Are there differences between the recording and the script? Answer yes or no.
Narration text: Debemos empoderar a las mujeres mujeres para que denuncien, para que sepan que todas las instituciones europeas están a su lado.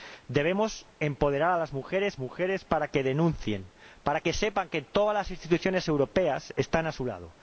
no